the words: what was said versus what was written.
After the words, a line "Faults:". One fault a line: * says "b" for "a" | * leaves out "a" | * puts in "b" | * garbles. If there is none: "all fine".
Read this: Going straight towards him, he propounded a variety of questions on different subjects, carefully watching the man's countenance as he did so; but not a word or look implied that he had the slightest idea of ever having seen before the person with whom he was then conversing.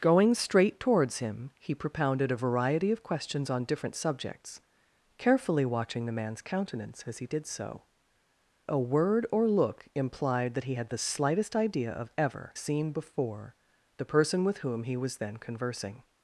Going straight towards him, he propounded a variety of questions on different subjects, carefully watching the man's countenance as he did so; a word or look implied that he had the slightest idea of ever seen before the person with whom he was then conversing.
Faults:
* leaves out "but not"
* leaves out "having"